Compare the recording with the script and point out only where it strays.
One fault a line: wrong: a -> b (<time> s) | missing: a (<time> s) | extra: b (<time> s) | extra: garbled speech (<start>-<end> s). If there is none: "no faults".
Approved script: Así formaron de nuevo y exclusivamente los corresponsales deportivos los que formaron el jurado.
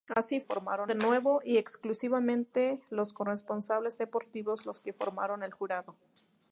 no faults